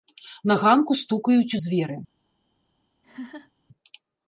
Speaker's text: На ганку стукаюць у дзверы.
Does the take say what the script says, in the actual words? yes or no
yes